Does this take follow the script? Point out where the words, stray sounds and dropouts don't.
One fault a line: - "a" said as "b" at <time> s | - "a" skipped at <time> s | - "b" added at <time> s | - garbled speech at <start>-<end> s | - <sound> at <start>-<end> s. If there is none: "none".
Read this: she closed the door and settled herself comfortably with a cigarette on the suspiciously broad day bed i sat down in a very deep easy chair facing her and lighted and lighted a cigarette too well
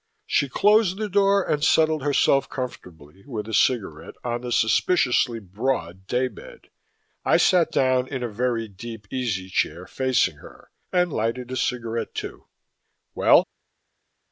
- "and lighted" skipped at 11.5 s